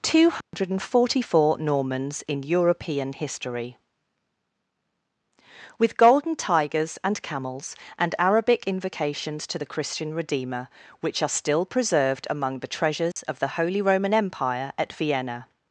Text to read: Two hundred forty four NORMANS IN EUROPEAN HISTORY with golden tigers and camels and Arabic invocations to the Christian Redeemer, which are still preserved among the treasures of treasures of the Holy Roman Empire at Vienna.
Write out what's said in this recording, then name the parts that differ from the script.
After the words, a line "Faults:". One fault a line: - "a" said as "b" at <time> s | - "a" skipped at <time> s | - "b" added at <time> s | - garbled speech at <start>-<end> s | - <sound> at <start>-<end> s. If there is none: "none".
Two hundred forty four NORMANS IN EUROPEAN HISTORY with golden tigers and camels and Arabic invocations to the Christian Redeemer, which are still preserved among the treasures of the Holy Roman Empire at Vienna.
Faults:
- dropout at 0.4-0.5 s
- dropout at 13.1-13.2 s
- "treasures of" skipped at 13.4 s